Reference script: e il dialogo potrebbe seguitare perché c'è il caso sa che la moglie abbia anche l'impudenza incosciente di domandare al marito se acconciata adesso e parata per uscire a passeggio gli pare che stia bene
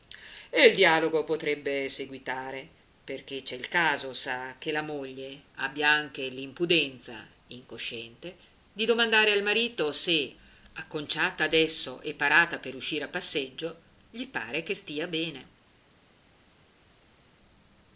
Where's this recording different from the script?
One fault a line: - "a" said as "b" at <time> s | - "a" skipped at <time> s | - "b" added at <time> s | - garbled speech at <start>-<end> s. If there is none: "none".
none